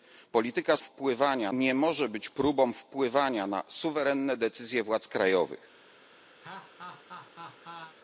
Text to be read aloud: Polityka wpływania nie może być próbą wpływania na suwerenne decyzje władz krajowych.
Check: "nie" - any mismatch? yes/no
no